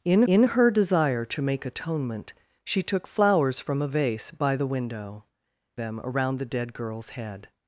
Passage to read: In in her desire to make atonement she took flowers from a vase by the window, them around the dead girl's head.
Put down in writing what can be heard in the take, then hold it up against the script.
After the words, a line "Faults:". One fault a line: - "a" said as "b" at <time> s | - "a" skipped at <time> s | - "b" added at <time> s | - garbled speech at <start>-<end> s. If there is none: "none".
In in her desire to make atonement she took flowers from a vase by the window, them around the dead girl's head.
Faults:
none